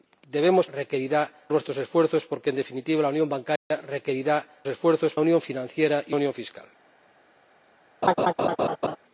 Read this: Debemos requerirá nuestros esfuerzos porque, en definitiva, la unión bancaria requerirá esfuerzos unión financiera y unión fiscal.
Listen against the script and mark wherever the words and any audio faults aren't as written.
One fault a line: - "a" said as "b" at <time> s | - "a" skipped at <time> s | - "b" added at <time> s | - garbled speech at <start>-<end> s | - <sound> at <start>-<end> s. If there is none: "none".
- dropout at 3.6-3.7 s
- laugh at 8.0-9.0 s